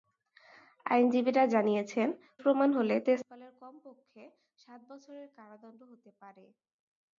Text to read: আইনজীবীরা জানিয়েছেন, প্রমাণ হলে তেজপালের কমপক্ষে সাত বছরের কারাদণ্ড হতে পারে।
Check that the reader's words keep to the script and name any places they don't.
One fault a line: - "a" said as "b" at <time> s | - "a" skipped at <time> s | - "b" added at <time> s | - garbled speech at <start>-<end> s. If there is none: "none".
none